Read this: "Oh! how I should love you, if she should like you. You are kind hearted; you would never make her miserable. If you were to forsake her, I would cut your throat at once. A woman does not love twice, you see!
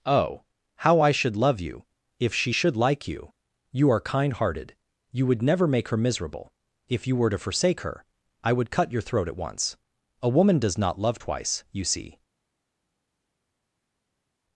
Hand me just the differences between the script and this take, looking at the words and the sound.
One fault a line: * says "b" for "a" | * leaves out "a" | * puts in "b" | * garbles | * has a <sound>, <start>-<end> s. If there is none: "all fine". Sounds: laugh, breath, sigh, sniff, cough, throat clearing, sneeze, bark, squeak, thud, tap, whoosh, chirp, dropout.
all fine